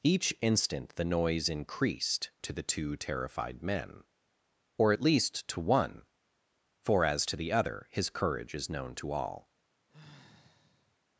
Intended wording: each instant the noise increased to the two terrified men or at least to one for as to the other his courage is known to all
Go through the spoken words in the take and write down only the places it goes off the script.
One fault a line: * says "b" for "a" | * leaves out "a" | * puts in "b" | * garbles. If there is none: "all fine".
all fine